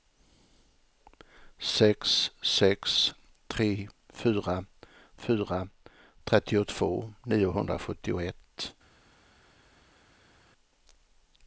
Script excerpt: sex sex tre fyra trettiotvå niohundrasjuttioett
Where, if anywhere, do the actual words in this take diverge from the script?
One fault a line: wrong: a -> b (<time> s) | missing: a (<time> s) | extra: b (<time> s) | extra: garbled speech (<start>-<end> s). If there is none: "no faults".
extra: fyra (5.3 s)